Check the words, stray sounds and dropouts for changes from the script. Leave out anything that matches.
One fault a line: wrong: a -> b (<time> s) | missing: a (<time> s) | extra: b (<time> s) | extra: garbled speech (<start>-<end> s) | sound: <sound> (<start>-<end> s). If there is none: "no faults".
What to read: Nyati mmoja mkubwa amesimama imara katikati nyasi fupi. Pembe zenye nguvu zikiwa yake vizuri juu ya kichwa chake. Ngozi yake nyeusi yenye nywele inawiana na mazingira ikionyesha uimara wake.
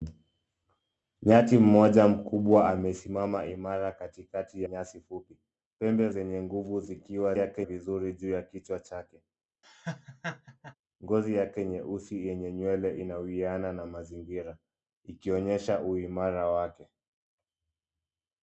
sound: laugh (9.6-10.8 s)